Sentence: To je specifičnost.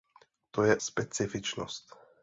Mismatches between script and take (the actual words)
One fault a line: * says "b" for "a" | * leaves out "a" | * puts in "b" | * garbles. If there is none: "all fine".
all fine